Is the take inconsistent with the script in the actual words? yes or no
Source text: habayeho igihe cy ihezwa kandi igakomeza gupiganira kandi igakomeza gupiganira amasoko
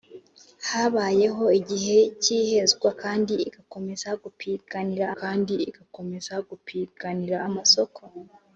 no